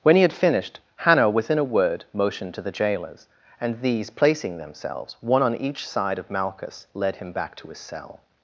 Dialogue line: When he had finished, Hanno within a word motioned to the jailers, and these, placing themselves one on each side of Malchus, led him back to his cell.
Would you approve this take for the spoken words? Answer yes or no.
yes